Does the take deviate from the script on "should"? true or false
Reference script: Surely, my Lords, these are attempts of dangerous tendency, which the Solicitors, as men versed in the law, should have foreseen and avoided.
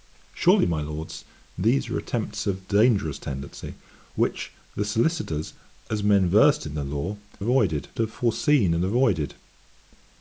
true